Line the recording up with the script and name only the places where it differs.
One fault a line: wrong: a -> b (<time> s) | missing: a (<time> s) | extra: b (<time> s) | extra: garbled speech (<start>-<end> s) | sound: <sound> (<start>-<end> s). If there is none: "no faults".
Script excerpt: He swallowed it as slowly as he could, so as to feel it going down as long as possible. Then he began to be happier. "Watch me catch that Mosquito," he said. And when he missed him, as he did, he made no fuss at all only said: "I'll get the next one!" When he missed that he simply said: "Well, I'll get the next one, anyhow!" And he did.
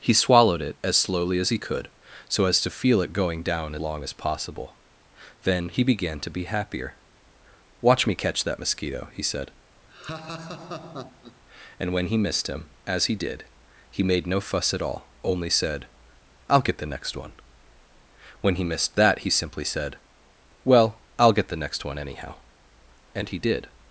missing: as (3.8 s)
sound: laugh (9.9-11.4 s)